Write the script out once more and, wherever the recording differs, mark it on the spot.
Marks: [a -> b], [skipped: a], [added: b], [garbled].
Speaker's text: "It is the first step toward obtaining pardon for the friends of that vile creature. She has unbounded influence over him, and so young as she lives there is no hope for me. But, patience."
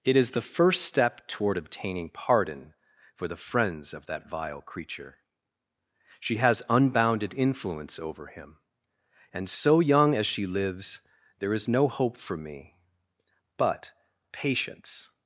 "It is the first step toward obtaining pardon for the friends of that vile creature. She has unbounded influence over him, and so young as she lives there is no hope for me. But, patience."